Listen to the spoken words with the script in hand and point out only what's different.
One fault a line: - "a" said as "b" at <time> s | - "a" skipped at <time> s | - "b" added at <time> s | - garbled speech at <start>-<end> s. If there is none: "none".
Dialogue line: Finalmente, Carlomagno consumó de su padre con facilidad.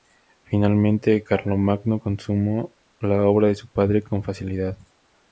- "la obra" added at 3.0 s